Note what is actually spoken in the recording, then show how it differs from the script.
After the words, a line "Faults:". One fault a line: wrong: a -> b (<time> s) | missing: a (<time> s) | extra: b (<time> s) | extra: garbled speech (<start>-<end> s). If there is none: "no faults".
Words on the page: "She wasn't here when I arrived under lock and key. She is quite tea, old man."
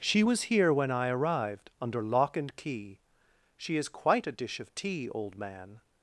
"She was here when I arrived under lock and key. She is quite a dish of tea, old man."
Faults:
wrong: wasn't -> was (0.2 s)
extra: a dish of (4.3 s)